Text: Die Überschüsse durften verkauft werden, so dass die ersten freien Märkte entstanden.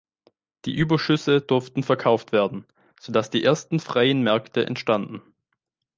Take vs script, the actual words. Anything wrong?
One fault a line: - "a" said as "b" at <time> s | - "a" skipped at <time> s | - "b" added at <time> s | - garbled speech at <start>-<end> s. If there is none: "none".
none